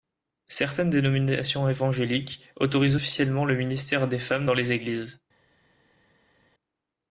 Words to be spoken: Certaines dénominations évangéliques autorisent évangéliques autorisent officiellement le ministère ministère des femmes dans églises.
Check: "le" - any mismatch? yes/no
no